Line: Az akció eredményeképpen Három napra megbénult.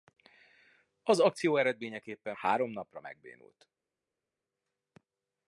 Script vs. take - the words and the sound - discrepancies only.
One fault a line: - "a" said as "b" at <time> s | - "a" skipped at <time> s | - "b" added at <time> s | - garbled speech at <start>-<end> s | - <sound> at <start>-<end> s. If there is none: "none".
none